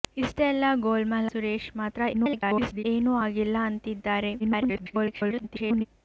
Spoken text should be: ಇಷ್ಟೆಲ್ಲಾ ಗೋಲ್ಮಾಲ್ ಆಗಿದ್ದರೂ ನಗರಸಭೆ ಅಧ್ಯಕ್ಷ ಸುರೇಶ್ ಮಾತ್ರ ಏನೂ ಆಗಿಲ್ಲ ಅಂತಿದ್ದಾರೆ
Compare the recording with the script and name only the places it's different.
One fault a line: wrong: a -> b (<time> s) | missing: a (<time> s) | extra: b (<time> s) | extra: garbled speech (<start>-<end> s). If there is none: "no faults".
missing: ಆಗಿದ್ದರೂ ನಗರಸಭೆ ಅಧ್ಯಕ್ಷ (1.3 s)
extra: garbled speech (2.1-2.9 s)
extra: garbled speech (4.4-5.9 s)